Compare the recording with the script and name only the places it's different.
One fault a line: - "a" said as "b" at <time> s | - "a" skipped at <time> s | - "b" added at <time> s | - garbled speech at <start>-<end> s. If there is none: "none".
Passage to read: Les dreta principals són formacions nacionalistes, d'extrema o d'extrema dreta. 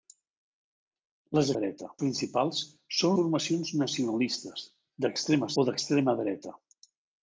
none